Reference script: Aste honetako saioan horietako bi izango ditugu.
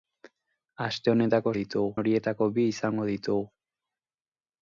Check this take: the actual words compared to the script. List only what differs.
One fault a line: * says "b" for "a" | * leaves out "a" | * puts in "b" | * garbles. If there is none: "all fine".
* says "ditugu" for "saioan"